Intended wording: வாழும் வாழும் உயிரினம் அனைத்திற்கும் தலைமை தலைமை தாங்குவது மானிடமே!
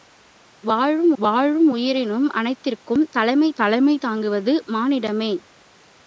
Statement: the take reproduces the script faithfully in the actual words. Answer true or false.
true